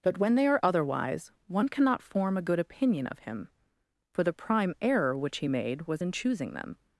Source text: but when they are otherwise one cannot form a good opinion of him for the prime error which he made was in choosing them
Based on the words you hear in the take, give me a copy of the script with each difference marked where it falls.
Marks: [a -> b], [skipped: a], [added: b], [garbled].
but when they are otherwise one cannot form a good opinion of him for the prime error which he made was in choosing them